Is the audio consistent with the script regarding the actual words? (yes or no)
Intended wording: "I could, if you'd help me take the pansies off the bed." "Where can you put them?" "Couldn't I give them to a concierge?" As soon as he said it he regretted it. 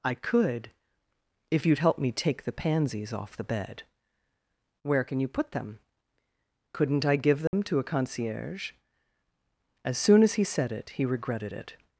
yes